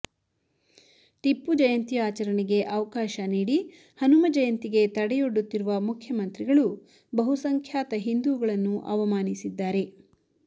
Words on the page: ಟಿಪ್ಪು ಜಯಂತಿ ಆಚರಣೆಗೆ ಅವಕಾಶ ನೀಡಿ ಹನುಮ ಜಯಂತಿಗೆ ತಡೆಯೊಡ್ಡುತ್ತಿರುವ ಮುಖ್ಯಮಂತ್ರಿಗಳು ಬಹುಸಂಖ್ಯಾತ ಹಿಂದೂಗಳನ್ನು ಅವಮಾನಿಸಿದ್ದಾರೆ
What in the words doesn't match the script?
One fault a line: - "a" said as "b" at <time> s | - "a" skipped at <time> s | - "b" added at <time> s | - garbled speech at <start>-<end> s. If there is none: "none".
none